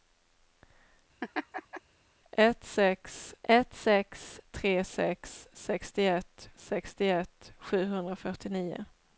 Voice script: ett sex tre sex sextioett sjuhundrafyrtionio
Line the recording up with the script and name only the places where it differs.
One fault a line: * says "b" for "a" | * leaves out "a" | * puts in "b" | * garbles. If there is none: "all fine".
* puts in "ett sex"
* puts in "sextioett"